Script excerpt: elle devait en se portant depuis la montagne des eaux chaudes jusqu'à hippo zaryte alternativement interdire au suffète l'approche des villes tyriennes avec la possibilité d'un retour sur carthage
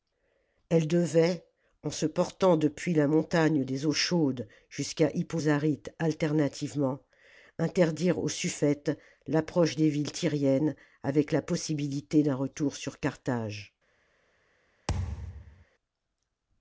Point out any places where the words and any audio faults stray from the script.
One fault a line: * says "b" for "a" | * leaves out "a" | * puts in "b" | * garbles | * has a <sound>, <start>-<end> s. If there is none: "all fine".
* has a thud, 14.9-15.7 s